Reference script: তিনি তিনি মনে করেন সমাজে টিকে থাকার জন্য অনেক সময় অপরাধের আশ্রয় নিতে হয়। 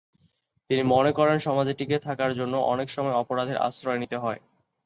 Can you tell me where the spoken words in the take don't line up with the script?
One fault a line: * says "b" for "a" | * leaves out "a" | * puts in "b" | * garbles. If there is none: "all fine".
* leaves out "তিনি"